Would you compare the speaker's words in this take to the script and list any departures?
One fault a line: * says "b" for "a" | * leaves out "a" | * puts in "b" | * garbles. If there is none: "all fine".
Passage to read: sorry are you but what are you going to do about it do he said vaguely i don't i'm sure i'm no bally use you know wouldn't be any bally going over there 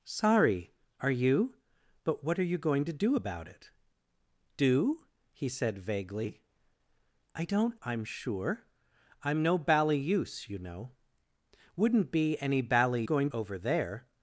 all fine